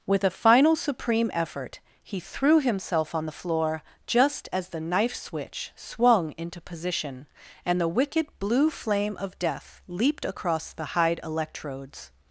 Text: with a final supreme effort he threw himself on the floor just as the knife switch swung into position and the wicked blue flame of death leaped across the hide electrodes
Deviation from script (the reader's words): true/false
false